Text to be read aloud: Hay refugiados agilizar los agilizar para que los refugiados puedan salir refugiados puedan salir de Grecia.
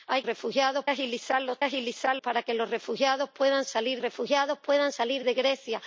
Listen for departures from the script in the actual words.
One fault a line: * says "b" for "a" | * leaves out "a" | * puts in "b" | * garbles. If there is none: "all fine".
all fine